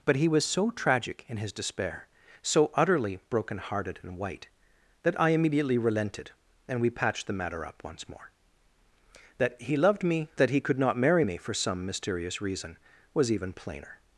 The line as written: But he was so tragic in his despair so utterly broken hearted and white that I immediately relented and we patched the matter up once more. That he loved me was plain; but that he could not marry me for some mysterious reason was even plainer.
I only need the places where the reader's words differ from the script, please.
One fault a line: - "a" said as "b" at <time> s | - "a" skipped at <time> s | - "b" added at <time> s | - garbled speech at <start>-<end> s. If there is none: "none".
- "was plain but" skipped at 10.3 s